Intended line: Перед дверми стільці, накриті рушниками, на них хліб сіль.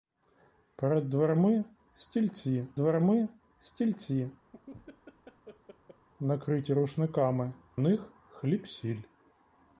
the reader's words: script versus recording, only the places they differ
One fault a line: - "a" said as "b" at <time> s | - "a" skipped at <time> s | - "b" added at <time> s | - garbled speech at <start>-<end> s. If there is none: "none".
- "дверми стільці" added at 2.7 s
- "на" skipped at 7.5 s